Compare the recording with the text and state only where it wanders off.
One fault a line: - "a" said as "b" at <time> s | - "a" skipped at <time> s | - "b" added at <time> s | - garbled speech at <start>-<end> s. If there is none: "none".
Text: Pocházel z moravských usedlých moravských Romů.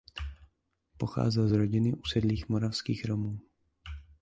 - "moravských" said as "rodiny" at 1.5 s